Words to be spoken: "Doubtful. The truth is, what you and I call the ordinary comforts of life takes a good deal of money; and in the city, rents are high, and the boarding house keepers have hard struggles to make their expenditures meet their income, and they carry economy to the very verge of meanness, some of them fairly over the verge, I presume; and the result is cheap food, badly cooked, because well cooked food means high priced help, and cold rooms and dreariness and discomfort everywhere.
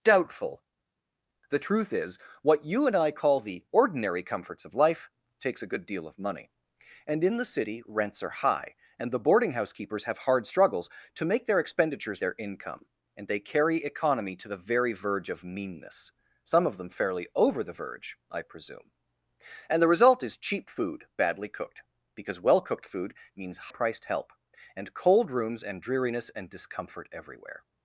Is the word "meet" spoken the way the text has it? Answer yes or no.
no